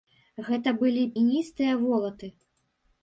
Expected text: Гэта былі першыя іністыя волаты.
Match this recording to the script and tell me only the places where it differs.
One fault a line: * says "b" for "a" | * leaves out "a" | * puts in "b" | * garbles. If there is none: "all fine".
* leaves out "першыя"